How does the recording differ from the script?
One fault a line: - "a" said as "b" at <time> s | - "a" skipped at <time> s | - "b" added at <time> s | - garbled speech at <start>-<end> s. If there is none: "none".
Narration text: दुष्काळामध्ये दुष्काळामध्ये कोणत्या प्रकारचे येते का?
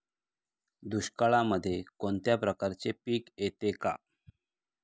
- "दुष्काळामध्ये" skipped at 1.8 s
- "पीक" added at 3.1 s